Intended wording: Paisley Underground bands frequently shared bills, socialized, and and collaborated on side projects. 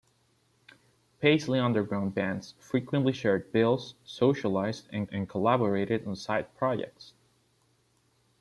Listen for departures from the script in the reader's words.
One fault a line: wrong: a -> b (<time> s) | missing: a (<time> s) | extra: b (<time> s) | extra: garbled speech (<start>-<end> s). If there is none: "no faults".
no faults